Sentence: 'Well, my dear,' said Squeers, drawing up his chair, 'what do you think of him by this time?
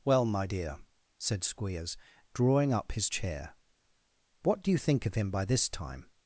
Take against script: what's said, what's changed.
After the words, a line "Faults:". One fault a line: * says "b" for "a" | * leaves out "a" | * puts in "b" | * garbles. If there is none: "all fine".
'Well, my dear,' said Squeers, drawing up his chair, 'what do you think of him by this time?
Faults:
all fine